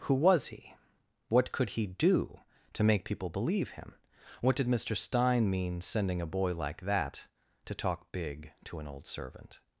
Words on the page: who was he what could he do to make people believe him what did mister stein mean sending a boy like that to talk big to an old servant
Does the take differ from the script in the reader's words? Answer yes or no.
no